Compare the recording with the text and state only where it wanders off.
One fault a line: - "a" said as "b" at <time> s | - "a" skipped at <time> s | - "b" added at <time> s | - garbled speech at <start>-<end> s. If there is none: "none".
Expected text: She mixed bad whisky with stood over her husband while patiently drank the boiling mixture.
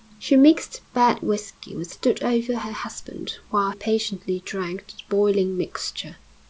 none